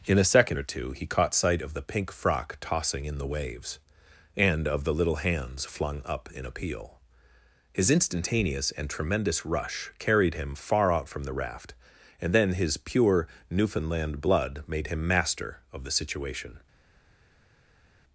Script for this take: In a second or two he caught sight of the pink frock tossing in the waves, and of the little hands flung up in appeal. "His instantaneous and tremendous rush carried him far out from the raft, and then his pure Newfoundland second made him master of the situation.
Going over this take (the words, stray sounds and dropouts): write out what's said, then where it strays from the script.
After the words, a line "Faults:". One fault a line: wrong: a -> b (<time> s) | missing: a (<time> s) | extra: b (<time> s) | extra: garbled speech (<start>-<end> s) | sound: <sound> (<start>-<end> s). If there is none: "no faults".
In a second or two he caught sight of the pink frock tossing in the waves, and of the little hands flung up in appeal. "His instantaneous and tremendous rush carried him far out from the raft, and then his pure Newfoundland blood made him master of the situation.
Faults:
wrong: second -> blood (14.2 s)